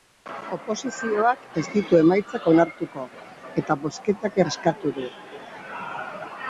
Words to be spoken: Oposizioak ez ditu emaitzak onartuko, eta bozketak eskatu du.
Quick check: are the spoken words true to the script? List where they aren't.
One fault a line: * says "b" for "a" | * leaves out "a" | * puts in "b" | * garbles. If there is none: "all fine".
all fine